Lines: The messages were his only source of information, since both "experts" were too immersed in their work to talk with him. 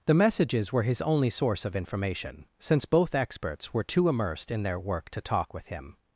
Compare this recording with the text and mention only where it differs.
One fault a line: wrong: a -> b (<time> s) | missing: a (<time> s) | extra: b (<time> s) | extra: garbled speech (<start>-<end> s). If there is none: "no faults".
no faults